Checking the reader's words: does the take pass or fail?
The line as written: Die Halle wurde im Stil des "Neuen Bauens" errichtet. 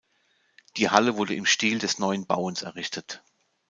pass